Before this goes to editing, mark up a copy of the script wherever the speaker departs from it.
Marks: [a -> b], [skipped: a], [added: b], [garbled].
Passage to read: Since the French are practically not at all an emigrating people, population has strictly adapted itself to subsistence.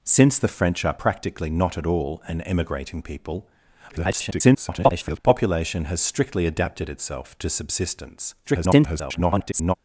Since the French are practically not at all an emigrating people, [garbled] population has strictly adapted itself to subsistence. [garbled]